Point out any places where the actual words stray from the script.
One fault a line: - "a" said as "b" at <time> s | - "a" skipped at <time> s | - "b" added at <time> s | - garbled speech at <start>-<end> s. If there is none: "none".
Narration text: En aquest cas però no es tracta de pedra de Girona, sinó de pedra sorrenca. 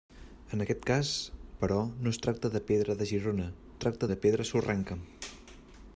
- "sinó" said as "tracta" at 3.8 s